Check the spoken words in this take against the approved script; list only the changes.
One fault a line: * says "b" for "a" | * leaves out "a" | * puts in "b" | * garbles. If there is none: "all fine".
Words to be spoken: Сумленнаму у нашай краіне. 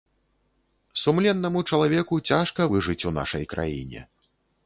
* puts in "чалавеку цяжка выжыць"